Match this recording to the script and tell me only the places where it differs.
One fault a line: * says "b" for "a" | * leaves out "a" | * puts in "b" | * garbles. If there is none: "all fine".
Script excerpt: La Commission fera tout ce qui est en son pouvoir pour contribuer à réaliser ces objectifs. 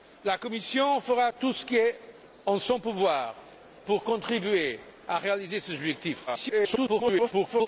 * garbles